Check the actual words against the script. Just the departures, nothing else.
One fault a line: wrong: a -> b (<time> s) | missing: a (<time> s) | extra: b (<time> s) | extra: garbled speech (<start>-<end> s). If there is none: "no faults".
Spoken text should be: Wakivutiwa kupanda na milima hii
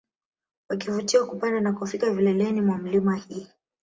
extra: kufika vileleni mwa (1.7 s)